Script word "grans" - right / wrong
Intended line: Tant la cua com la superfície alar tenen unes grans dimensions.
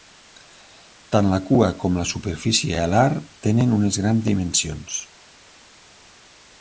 right